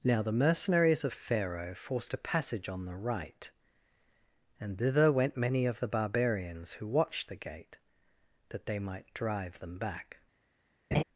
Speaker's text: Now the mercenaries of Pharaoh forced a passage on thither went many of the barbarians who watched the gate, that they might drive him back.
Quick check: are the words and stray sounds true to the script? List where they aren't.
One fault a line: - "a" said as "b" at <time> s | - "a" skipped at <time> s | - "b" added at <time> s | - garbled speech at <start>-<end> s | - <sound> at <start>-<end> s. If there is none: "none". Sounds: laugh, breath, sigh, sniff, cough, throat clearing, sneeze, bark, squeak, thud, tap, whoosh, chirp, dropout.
- "the right and" added at 2.9 s
- "him" said as "them" at 9.6 s
- laugh at 10.9-11.0 s